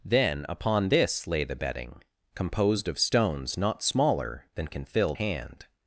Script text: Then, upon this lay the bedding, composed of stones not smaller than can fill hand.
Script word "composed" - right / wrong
right